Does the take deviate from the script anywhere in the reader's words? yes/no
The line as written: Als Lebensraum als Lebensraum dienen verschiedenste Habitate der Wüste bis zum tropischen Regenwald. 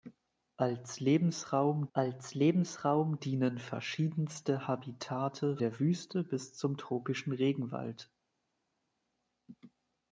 no